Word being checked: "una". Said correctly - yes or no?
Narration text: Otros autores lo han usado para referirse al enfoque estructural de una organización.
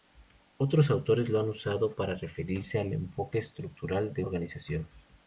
no